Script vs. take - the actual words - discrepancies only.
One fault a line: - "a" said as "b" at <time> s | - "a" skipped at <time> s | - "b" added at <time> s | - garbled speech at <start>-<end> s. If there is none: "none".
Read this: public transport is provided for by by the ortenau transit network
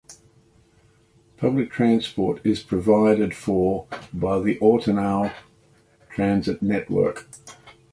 - "by" skipped at 4.4 s